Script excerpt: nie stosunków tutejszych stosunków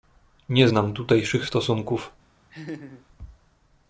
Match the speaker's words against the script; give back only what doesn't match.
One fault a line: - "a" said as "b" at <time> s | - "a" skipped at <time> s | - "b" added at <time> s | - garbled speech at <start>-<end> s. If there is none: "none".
- "stosunków" said as "znam" at 0.7 s